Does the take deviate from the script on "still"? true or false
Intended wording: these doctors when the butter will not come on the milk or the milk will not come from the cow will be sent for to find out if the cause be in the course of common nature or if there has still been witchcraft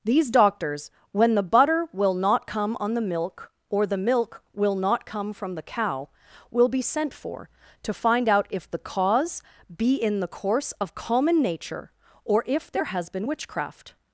true